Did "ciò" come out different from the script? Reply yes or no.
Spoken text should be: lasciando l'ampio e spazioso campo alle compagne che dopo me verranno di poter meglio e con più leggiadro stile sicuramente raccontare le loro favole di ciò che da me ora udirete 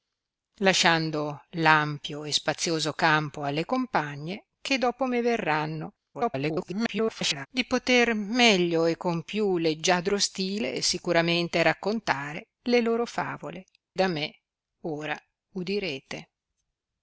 yes